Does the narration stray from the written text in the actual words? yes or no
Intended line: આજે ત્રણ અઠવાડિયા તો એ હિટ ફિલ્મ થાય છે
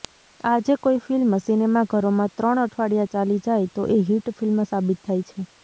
yes